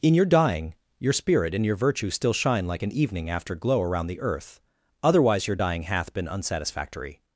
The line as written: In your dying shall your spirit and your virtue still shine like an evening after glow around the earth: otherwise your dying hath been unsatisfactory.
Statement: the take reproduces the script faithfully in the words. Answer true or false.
false